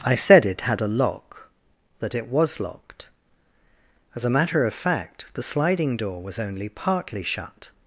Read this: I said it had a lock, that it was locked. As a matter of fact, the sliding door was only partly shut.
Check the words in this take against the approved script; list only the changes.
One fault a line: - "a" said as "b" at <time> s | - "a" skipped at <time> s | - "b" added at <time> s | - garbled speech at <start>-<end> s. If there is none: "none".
none